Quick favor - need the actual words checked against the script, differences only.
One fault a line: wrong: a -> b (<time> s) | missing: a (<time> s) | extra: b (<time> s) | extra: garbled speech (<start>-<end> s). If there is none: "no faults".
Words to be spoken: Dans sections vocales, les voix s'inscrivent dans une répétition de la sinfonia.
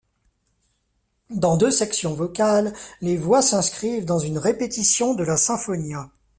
extra: deux (1.5 s)